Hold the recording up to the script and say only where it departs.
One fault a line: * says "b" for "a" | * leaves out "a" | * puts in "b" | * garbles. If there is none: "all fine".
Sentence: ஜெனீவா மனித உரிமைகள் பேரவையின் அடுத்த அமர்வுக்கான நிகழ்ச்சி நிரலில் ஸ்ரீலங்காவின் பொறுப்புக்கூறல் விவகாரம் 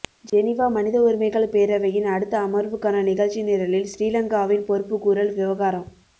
all fine